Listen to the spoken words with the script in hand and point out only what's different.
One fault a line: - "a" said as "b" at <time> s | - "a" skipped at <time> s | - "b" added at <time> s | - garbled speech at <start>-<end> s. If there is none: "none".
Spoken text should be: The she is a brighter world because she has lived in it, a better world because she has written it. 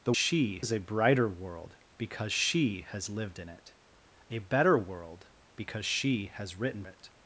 none